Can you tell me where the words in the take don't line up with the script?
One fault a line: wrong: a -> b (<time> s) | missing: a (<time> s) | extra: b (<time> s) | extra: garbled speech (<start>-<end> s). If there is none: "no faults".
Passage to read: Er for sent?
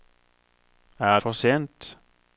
no faults